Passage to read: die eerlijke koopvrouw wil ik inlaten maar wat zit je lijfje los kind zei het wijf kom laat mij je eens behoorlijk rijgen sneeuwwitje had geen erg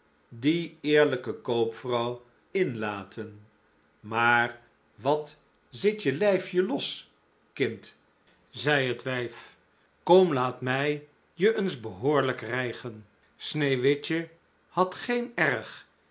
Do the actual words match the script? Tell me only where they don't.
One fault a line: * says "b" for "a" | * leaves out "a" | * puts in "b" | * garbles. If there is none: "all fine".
* leaves out "wil ik"